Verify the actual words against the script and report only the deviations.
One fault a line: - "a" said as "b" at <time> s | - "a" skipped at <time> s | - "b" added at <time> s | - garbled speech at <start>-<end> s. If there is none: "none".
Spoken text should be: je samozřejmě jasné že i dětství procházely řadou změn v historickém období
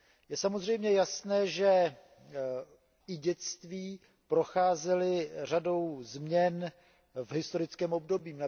none